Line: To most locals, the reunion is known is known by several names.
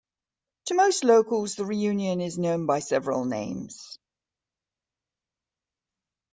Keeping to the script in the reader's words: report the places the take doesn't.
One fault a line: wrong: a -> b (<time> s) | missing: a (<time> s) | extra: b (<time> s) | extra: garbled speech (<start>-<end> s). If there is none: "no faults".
missing: is known (2.6 s)